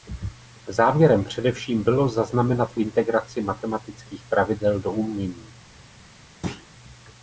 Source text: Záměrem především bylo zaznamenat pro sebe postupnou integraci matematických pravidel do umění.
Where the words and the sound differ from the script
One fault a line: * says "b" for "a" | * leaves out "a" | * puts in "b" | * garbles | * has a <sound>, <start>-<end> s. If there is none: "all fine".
* leaves out "pro sebe postupnou"
* has a thud, 6.4-6.7 s